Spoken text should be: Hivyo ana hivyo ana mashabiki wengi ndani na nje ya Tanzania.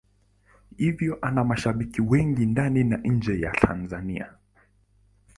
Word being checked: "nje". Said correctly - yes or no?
yes